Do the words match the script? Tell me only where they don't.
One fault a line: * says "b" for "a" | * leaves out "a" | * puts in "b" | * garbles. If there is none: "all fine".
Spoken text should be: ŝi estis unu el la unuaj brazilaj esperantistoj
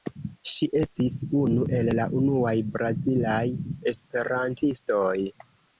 all fine